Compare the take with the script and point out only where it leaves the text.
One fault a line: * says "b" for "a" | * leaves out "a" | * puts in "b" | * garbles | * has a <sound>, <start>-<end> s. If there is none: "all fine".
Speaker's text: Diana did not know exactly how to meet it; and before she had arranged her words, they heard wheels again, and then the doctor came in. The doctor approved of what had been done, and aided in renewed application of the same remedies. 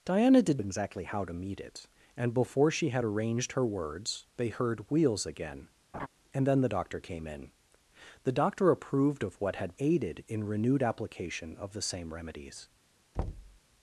* leaves out "not know"
* has a laugh, 5.9-6.1 s
* leaves out "been done and"
* has a thud, 13.1-13.6 s